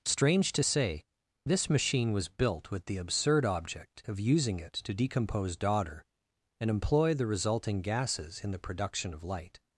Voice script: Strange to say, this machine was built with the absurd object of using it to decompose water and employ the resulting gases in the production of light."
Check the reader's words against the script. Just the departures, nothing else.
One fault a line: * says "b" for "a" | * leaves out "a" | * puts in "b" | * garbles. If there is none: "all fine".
* says "daughter" for "water"